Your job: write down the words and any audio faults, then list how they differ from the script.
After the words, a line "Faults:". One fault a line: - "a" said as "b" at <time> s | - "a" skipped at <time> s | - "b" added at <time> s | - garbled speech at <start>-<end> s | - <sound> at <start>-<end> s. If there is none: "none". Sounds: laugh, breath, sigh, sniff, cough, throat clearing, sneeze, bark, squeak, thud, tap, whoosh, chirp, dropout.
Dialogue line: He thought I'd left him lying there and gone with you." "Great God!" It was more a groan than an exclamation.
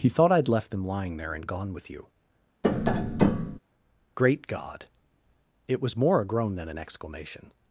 He thought I'd left him lying there and gone with you." "Great God!" It was more a groan than an exclamation.
Faults:
- tap at 2.6-3.6 s